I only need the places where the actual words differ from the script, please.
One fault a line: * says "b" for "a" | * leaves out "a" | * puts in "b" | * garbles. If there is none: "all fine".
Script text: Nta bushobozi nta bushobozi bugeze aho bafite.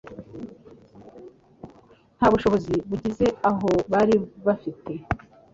* leaves out "nta bushobozi"
* puts in "bari"